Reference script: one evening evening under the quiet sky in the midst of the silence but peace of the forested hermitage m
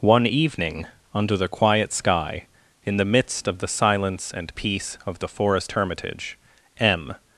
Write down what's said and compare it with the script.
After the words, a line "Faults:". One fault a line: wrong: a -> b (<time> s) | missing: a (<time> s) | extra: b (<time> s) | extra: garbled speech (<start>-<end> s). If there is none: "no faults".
one evening under the quiet sky in the midst of the silence and peace of the forest hermitage m
Faults:
missing: evening (0.9 s)
wrong: but -> and (4.3 s)
wrong: forested -> forest (5.3 s)